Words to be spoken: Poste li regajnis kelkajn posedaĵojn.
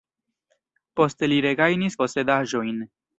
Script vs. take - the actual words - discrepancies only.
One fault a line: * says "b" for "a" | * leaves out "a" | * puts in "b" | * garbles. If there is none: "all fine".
* leaves out "kelkajn"